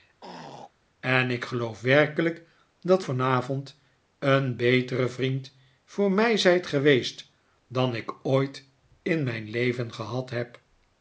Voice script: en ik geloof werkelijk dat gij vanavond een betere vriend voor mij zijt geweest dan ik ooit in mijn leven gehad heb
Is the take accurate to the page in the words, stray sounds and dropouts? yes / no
no